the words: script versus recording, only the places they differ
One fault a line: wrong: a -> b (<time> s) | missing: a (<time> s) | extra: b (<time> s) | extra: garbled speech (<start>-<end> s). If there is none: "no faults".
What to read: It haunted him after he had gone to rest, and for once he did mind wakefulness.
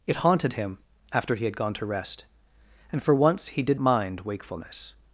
no faults